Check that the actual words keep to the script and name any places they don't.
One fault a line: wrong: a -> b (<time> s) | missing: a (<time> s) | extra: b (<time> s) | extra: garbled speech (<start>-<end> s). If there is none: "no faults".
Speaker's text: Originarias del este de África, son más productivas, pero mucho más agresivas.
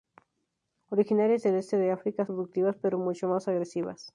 missing: son más (2.2 s)